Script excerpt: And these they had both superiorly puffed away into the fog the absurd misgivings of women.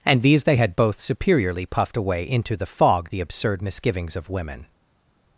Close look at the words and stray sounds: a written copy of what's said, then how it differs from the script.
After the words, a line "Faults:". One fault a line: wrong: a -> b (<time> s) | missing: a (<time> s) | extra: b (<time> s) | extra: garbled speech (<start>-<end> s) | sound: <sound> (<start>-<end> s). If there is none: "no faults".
And these they had both superiorly puffed away into the fog the absurd misgivings of women.
Faults:
no faults